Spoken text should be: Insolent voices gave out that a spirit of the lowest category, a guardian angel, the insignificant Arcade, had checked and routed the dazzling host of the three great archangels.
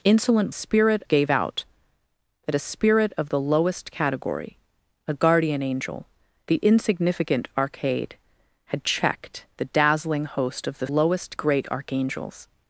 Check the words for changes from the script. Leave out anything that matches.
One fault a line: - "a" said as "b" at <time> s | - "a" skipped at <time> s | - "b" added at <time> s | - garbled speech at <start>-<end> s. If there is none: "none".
- "voices" said as "spirit" at 0.5 s
- "and routed" skipped at 9.5 s
- "three" said as "lowest" at 10.9 s